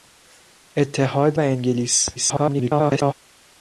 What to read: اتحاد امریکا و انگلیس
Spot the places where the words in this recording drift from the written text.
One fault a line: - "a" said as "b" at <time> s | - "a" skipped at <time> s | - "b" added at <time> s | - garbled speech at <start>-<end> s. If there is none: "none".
- "امریکا" skipped at 1.4 s
- garbled speech at 2.1-3.1 s